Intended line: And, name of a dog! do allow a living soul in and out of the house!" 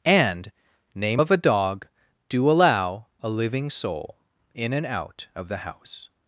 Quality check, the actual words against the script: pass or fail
pass